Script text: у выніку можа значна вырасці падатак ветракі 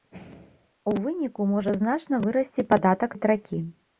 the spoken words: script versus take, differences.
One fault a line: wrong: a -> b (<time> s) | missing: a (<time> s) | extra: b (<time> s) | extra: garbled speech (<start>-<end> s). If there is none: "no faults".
no faults